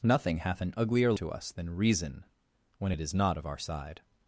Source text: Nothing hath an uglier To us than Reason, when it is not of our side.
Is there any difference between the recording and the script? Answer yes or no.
no